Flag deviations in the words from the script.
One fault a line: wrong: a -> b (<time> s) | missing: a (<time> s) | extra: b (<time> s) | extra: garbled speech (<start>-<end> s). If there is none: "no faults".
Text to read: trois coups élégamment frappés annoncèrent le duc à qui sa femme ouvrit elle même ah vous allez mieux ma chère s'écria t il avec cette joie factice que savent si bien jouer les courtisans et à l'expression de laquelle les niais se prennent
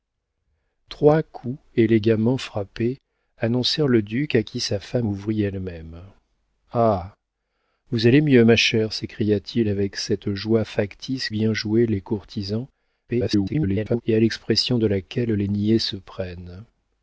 missing: que savent si (11.3 s)
extra: garbled speech (13.1-14.0 s)